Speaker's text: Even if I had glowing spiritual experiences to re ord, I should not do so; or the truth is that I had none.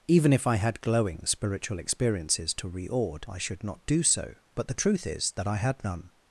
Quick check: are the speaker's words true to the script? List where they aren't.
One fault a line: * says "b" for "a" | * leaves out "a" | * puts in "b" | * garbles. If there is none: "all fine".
* says "but" for "or"